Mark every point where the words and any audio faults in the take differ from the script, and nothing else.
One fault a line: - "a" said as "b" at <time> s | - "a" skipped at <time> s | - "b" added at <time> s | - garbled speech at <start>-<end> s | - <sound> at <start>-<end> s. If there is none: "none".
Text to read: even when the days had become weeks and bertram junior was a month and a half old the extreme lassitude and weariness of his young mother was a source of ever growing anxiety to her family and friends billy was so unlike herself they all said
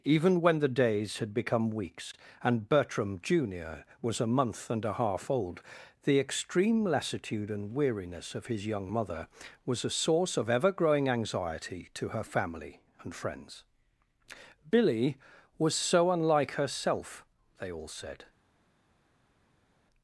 none